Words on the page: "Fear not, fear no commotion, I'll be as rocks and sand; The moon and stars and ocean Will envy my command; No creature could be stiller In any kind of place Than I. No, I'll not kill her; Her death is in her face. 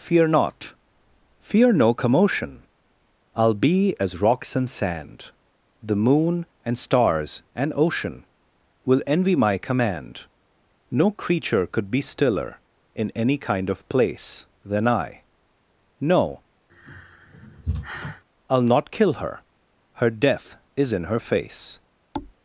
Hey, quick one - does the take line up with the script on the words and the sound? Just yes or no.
no